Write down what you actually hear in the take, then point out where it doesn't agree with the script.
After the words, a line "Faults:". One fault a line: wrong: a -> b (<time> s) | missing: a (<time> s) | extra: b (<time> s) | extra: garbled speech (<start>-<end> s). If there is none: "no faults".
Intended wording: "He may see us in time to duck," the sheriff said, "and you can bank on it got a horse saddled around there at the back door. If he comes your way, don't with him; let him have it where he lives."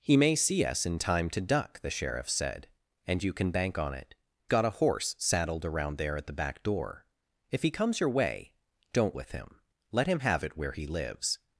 "He may see us in time to duck," the sheriff said, "and you can bank on it got a horse saddled around there at the back door. If he comes your way, don't with him; let him have it where he lives."
Faults:
no faults